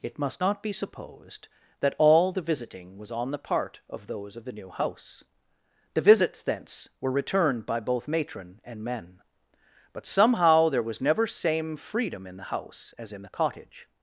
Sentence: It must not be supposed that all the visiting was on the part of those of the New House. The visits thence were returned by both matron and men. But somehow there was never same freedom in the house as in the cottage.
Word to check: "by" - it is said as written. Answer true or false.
true